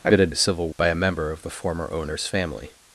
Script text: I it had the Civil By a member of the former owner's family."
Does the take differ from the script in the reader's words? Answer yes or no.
no